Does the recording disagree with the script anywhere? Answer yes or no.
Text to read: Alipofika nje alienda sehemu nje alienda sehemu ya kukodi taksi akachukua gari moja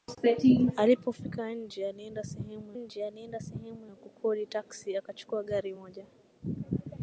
no